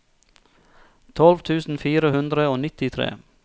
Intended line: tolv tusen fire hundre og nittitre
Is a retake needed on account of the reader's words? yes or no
no